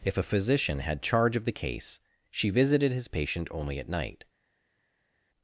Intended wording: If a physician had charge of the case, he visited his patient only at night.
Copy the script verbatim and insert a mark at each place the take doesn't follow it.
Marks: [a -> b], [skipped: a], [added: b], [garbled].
If a physician had charge of the case, [he -> she] visited his patient only at night.